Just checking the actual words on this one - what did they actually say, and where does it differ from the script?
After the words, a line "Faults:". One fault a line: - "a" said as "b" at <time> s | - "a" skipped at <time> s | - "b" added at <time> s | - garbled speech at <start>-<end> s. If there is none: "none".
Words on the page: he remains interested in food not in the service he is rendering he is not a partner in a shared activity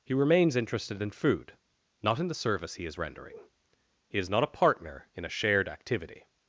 he remains interested in food not in the service he is rendering he is not a partner in a shared activity
Faults:
none